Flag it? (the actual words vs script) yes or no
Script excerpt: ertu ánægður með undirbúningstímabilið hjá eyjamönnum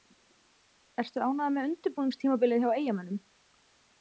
no